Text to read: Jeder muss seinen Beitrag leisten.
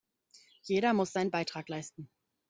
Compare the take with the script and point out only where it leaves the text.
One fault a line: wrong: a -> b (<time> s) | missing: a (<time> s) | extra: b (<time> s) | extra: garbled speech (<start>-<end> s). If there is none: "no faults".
no faults